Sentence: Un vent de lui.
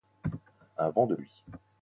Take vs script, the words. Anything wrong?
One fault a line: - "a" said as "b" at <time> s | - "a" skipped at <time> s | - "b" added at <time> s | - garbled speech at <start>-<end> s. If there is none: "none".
none